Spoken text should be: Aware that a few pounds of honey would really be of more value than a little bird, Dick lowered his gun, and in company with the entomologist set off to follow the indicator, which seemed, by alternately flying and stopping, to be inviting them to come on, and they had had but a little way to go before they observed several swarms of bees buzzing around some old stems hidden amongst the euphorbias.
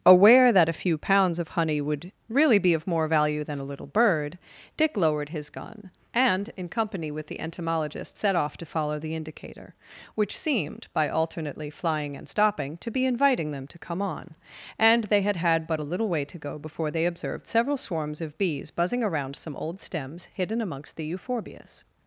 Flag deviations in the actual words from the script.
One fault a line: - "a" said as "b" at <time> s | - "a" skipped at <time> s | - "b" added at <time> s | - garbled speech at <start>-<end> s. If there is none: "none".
none